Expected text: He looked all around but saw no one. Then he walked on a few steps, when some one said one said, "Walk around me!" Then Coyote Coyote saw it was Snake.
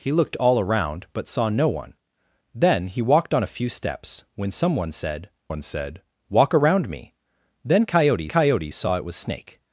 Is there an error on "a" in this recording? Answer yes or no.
no